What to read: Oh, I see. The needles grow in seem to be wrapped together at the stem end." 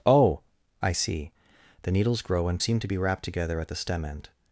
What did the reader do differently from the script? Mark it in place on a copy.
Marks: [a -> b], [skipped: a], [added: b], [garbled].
Oh, I see. The needles grow in seem to be wrapped together at the stem end."